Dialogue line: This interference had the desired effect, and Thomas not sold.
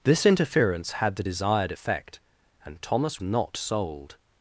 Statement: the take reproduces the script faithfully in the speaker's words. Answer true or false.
true